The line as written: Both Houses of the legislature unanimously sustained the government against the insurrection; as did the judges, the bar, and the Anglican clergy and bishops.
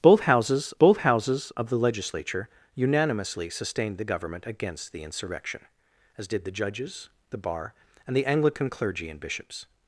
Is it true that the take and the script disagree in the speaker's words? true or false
true